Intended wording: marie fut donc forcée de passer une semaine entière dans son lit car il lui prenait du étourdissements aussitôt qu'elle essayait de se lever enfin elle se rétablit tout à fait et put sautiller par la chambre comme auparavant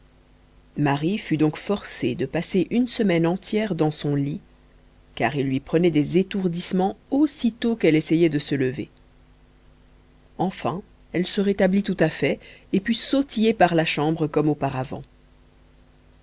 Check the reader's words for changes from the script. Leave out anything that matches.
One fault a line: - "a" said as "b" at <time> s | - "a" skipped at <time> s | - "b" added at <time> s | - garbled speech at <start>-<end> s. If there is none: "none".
- "du" said as "des" at 5.9 s